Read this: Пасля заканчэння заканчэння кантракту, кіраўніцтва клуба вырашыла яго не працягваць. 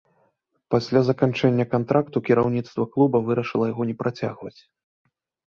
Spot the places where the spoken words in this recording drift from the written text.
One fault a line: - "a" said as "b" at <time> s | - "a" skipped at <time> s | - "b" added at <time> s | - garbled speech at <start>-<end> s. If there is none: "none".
- "заканчэння" skipped at 1.6 s